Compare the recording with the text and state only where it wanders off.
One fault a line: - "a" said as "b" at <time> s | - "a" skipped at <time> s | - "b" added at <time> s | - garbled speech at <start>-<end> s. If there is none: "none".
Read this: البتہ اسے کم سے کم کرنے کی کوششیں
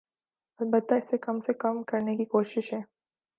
none